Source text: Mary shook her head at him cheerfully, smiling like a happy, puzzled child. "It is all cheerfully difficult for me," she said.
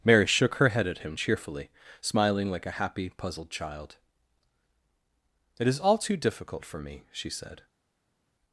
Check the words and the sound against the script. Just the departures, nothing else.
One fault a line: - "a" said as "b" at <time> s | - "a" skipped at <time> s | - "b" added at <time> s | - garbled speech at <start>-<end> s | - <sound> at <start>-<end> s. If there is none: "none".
- "cheerfully" said as "too" at 6.0 s